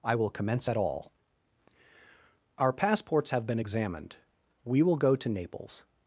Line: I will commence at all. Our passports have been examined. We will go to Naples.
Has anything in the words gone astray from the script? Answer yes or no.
no